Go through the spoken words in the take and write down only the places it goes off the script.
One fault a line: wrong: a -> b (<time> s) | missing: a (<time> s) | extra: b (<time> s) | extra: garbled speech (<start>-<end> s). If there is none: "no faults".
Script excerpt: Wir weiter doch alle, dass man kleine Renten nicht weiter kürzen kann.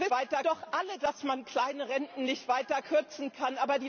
no faults